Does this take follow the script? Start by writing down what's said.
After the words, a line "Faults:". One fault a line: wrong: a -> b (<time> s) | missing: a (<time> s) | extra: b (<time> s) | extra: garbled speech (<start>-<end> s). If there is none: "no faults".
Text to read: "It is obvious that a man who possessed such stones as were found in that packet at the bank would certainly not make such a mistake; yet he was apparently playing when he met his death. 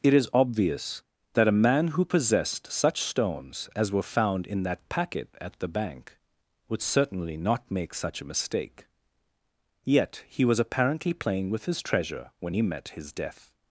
"It is obvious that a man who possessed such stones as were found in that packet at the bank would certainly not make such a mistake; yet he was apparently playing with his treasure when he met his death.
Faults:
extra: with his treasure (11.5 s)